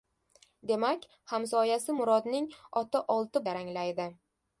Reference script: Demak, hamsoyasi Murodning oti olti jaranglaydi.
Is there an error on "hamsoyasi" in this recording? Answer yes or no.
no